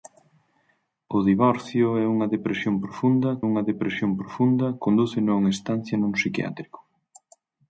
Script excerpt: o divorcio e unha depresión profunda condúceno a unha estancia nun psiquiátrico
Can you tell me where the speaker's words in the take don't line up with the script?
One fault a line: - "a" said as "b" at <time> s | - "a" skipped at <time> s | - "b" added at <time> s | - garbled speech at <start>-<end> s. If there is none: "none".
- "unha depresión profunda" added at 3.5 s